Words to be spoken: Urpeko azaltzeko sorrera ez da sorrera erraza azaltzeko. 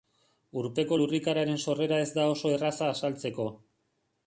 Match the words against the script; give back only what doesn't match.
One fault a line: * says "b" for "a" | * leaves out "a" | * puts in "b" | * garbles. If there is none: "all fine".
* says "lurrikararen" for "azaltzeko"
* says "oso" for "sorrera"